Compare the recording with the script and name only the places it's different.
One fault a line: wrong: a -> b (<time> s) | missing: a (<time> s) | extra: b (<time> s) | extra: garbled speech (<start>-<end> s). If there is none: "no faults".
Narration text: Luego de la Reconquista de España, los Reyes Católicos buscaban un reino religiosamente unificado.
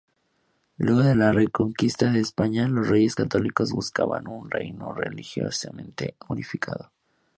no faults